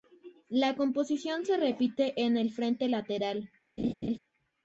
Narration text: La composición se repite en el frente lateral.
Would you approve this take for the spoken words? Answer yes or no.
yes